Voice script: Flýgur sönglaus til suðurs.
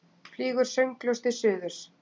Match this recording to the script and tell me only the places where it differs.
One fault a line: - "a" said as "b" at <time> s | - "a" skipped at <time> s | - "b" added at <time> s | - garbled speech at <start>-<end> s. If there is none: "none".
none